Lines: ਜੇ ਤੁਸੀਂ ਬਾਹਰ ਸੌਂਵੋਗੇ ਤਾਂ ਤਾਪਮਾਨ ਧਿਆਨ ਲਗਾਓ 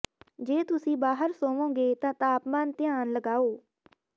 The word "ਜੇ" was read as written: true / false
true